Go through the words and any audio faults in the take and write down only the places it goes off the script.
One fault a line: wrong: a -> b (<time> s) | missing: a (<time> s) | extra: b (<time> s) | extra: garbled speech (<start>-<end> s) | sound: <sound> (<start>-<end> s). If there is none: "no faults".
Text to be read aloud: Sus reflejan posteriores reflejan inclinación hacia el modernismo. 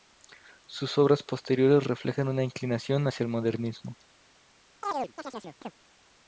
wrong: reflejan -> obras (1.0 s)
extra: una (2.3 s)
sound: chirp (4.8-5.7 s)